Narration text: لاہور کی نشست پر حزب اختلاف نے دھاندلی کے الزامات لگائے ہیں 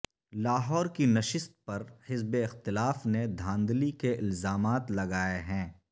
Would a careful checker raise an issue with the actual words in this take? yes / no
no